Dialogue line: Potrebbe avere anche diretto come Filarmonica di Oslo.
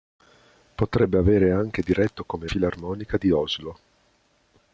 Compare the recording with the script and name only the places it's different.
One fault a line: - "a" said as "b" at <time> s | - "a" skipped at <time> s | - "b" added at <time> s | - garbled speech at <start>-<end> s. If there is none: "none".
none